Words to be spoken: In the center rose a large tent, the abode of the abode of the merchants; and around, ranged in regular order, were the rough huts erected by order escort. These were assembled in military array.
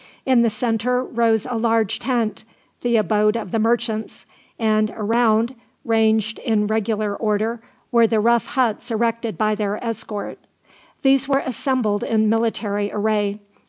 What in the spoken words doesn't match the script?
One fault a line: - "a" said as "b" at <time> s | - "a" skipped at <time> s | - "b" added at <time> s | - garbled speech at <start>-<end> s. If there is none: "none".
- "abode of the" skipped at 3.6 s
- "order" said as "their" at 9.5 s